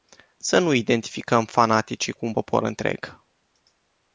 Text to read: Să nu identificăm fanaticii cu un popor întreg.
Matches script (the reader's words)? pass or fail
pass